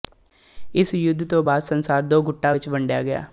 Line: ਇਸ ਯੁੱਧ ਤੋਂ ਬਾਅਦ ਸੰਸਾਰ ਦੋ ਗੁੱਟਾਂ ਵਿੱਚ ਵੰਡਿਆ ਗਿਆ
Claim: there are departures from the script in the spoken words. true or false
false